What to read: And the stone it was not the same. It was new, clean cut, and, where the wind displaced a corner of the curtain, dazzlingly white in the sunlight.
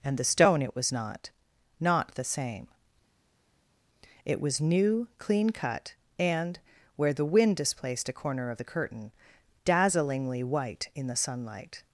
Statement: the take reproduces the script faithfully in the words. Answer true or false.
false